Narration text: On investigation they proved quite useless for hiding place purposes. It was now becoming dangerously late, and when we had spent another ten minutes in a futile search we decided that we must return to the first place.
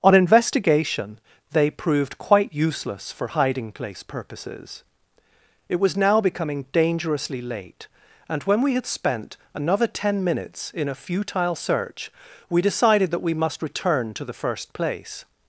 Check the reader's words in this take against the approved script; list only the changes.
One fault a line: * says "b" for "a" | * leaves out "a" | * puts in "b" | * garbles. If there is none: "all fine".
all fine